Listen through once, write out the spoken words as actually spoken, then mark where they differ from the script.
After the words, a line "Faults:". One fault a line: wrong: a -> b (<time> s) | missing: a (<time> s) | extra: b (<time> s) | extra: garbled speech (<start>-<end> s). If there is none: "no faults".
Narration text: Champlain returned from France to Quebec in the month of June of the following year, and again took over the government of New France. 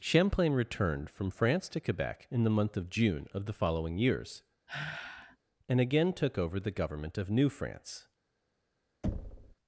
Champlain returned from France to Quebec in the month of June of the following years, and again took over the government of New France.
Faults:
wrong: year -> years (4.0 s)